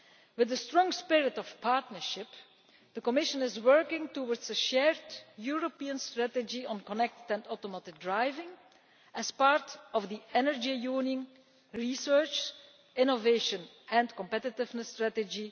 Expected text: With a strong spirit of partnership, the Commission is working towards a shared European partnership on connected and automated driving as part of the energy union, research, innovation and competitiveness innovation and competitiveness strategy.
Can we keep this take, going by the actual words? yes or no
no